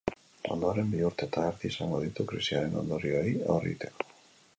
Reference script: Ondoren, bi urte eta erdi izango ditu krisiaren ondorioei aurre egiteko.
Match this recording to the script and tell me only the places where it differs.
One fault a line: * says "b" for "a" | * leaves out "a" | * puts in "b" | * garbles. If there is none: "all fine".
all fine